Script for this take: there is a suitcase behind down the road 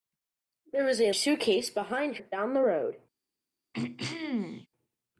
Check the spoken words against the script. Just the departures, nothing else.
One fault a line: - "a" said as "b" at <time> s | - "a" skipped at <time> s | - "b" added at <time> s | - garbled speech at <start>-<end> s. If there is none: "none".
none